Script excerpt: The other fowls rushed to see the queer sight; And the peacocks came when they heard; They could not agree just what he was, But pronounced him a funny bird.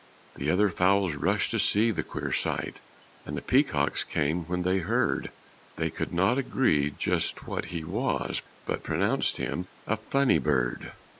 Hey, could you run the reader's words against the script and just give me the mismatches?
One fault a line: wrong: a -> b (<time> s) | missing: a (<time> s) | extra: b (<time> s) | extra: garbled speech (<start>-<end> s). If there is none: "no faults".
no faults